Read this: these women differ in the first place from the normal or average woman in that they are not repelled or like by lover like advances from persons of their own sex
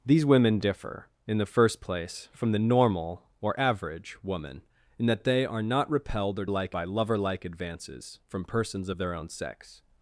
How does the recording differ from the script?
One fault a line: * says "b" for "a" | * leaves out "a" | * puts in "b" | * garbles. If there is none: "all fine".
all fine